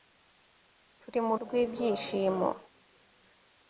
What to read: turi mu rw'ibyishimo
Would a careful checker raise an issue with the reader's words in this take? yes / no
no